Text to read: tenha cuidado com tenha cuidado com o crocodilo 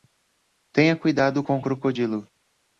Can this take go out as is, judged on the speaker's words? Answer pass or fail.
fail